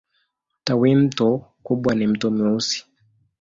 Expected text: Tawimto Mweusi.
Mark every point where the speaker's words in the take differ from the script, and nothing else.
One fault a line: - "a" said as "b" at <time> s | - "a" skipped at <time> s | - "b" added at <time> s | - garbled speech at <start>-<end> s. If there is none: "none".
- "kubwa ni Mto" added at 1.6 s